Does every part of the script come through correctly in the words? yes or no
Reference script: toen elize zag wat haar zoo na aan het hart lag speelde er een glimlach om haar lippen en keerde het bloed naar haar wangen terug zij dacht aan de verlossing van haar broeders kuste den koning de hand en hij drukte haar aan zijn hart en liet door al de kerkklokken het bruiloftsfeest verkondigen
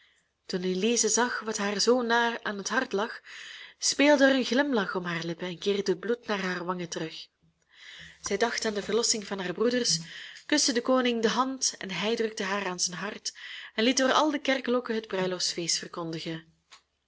yes